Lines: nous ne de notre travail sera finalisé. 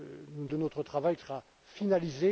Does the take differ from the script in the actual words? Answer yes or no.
no